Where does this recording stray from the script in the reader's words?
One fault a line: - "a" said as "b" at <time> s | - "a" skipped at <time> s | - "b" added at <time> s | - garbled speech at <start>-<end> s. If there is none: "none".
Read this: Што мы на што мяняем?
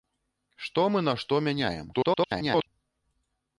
- garbled speech at 1.9-2.7 s